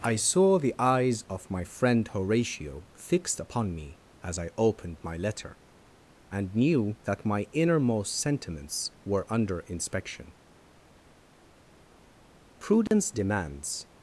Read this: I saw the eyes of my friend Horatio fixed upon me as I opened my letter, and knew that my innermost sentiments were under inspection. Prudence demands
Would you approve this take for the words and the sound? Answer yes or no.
no